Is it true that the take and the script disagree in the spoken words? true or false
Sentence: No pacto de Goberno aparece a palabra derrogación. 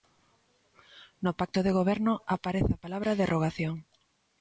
false